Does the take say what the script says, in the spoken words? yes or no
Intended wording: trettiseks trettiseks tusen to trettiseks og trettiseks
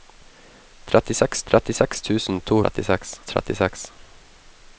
yes